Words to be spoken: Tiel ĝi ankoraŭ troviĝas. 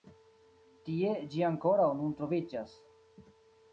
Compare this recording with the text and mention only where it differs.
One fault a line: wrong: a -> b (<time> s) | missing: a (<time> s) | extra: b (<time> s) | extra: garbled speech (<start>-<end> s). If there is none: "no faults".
wrong: Tiel -> Tie (0.9 s)
extra: nun (2.0 s)